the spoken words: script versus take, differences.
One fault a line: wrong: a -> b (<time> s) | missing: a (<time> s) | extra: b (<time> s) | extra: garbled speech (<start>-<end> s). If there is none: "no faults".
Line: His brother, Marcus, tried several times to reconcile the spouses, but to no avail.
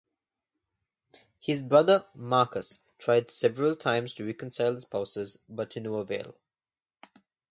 no faults